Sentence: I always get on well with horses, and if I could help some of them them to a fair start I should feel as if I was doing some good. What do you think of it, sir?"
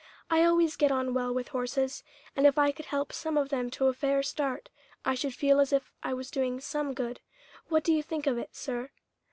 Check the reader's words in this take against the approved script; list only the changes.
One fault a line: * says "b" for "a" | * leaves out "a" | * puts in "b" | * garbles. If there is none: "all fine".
* leaves out "them"